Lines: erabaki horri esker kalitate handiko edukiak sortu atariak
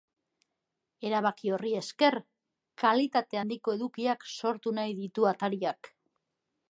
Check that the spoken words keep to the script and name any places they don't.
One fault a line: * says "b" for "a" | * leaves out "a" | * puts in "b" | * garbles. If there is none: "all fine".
* puts in "nahi ditu"